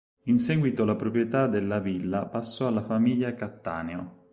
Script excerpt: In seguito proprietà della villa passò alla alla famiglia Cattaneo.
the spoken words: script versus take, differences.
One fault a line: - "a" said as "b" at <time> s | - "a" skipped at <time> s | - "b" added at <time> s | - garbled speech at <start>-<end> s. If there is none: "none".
- "la" added at 0.8 s
- "alla" skipped at 2.8 s